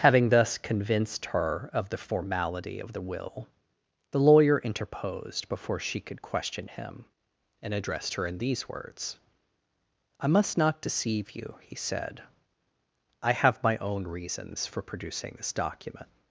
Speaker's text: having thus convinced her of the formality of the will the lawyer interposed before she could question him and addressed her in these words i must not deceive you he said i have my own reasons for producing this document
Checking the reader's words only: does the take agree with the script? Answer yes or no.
yes